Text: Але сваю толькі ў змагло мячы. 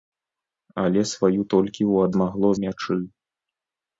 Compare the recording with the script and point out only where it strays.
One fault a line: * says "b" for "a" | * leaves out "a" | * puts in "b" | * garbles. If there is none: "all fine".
all fine